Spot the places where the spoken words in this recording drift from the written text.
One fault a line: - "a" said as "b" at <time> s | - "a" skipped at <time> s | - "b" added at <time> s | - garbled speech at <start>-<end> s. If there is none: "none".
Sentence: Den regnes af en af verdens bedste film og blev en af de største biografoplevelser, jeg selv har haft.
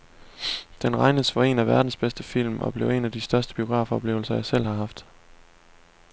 - "af" said as "for" at 1.3 s